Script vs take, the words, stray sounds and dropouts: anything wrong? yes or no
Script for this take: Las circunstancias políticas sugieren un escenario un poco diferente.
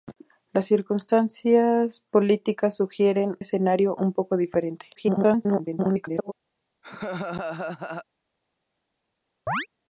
yes